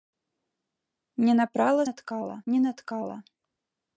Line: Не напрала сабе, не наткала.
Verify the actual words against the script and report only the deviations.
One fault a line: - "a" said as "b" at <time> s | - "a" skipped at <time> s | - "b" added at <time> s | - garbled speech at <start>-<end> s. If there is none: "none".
- "сабе" said as "наткала" at 1.9 s